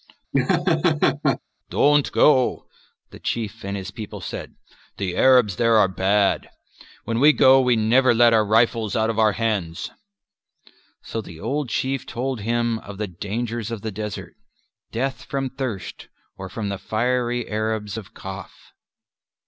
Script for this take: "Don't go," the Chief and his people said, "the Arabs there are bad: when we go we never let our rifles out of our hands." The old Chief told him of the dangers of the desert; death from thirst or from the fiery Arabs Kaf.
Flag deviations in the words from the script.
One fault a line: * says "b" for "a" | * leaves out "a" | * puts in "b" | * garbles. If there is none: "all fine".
* puts in "So"
* puts in "of"